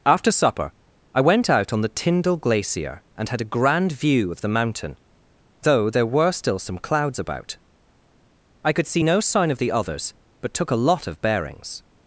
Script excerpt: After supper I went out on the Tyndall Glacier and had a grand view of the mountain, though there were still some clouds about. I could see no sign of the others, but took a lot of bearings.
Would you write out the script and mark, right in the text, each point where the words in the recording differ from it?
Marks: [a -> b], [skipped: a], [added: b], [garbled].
After supper I went out on the Tyndall Glacier and had a grand view of the mountain, though there were still some clouds about. I could see no sign of the others, but took a lot of bearings.